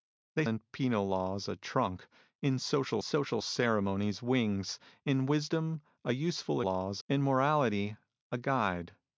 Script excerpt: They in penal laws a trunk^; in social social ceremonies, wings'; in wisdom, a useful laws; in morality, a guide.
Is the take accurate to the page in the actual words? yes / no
yes